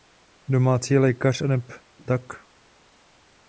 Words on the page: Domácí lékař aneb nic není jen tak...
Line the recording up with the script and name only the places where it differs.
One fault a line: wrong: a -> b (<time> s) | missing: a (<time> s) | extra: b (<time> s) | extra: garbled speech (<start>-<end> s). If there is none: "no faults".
missing: nic není jen (1.7 s)